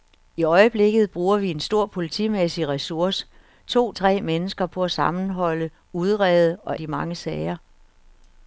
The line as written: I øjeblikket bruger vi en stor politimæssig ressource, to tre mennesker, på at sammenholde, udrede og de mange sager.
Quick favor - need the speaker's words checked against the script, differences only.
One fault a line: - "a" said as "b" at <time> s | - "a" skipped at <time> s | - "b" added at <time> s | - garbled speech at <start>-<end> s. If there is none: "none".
none